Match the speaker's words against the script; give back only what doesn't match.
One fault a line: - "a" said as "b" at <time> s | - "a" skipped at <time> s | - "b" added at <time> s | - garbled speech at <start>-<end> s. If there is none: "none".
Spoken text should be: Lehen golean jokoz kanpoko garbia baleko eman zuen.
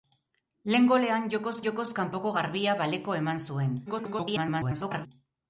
- "jokoz" added at 1.7 s
- garbled speech at 3.9-5.1 s